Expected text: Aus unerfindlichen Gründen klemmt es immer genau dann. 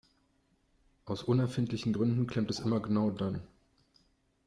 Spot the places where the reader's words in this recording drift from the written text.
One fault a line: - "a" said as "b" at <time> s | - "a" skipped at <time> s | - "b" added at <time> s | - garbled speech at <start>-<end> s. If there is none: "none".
none